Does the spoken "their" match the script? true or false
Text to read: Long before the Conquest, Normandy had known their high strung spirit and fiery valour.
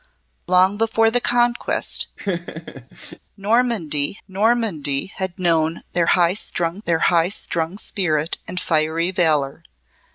true